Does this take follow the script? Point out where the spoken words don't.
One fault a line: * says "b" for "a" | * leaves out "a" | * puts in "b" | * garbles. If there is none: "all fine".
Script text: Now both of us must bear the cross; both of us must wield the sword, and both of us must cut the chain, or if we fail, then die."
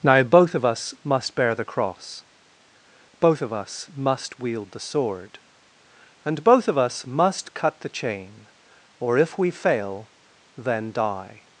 all fine